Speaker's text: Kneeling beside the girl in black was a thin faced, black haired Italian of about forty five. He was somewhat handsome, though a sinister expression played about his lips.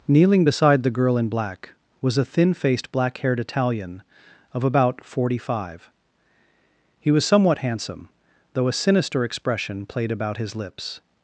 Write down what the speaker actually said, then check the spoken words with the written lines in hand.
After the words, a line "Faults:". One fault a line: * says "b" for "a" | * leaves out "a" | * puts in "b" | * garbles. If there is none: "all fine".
Kneeling beside the girl in black was a thin faced, black haired Italian of about forty five. He was somewhat handsome, though a sinister expression played about his lips.
Faults:
all fine